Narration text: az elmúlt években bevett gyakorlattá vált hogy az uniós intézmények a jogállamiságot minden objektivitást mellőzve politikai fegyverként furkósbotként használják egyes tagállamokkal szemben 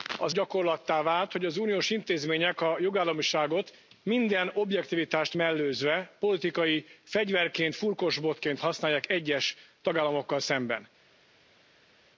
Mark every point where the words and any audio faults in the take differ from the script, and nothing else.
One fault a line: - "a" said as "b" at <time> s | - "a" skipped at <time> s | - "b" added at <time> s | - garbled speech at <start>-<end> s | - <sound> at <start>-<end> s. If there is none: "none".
- "elmúlt években bevett" skipped at 0.3 s